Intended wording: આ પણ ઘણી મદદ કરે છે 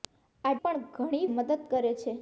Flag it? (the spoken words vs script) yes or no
no